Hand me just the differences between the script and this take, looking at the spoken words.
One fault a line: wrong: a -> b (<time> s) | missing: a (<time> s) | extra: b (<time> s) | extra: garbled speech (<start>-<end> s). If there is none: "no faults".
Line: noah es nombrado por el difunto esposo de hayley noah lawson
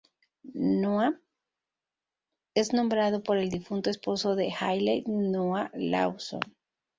no faults